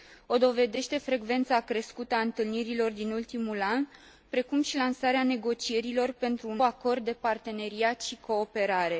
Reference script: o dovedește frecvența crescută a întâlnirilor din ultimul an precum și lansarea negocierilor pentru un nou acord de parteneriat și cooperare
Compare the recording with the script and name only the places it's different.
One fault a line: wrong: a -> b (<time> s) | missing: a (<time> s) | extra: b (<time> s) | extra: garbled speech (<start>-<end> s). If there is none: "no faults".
missing: nou (6.6 s)